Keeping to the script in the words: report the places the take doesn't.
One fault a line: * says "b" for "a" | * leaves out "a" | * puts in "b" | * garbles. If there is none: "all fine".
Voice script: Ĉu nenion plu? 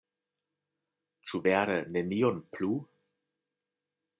* puts in "vere"